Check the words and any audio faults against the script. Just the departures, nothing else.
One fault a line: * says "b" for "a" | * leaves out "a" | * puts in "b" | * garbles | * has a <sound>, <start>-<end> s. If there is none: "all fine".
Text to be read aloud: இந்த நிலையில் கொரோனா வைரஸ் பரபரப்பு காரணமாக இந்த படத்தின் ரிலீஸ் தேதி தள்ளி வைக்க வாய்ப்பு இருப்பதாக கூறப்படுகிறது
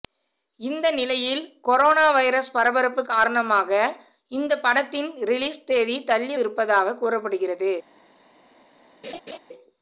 * leaves out "வைக்க வாய்ப்பு"
* has a laugh, 9.0-9.4 s